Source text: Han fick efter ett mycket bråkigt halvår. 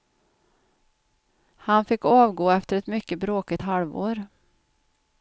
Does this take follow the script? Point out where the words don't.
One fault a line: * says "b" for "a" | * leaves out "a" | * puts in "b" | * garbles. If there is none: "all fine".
* puts in "avgå"